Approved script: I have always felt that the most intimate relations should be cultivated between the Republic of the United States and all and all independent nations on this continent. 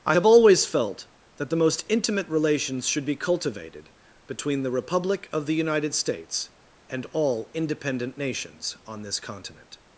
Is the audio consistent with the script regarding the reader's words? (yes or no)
no